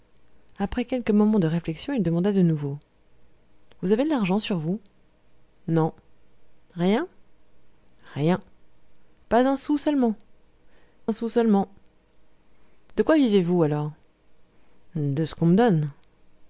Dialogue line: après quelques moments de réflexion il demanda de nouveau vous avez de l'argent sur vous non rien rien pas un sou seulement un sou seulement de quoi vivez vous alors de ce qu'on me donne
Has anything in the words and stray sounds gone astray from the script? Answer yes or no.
no